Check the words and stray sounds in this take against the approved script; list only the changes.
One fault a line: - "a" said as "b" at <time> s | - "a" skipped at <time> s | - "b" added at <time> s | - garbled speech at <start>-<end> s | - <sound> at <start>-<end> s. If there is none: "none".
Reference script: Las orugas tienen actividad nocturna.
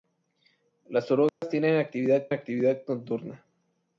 - dropout at 1.3-1.4 s
- "actividad" added at 2.3 s